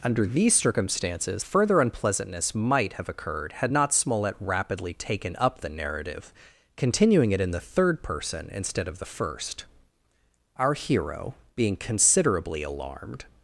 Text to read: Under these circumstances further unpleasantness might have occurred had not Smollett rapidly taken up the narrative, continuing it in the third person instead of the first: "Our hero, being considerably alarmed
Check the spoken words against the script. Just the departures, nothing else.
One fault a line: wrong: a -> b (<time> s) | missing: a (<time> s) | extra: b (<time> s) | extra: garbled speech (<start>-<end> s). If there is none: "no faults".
no faults